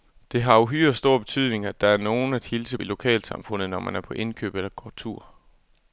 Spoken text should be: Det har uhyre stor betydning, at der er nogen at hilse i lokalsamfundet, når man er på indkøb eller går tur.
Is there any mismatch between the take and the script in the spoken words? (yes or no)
no